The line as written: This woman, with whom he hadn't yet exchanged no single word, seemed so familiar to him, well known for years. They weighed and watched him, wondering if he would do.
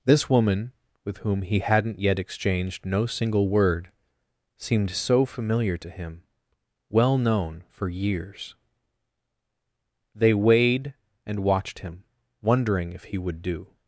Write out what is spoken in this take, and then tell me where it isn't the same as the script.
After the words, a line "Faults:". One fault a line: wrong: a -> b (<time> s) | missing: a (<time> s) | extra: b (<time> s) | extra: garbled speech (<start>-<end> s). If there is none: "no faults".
This woman, with whom he hadn't yet exchanged no single word, seemed so familiar to him, well known for years. They weighed and watched him, wondering if he would do.
Faults:
no faults